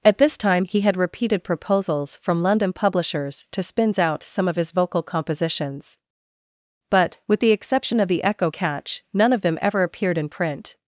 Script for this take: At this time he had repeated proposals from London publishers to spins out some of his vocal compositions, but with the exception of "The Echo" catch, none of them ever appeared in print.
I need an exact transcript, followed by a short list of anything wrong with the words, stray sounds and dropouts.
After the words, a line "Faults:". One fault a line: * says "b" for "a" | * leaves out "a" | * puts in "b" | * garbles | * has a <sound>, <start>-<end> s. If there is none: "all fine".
At this time he had repeated proposals from London publishers to spins out some of his vocal compositions, but with the exception of "The Echo" catch, none of them ever appeared in print.
Faults:
all fine